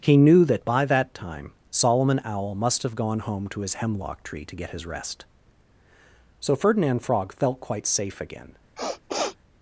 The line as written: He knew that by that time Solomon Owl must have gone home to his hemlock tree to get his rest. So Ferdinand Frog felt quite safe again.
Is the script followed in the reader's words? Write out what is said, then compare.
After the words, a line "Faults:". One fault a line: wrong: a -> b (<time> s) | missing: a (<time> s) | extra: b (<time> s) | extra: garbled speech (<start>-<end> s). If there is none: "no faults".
He knew that by that time Solomon Owl must have gone home to his hemlock tree to get his rest. So Ferdinand Frog felt quite safe again.
Faults:
no faults